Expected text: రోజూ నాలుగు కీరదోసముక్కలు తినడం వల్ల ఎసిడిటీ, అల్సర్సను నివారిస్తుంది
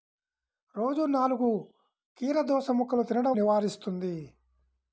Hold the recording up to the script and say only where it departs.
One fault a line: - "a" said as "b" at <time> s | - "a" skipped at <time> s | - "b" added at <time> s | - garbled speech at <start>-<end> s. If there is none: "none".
- "వల్ల ఎసిడిటీ అల్సర్సను" skipped at 3.4 s